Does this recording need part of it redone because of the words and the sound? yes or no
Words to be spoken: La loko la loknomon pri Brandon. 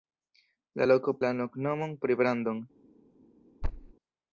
yes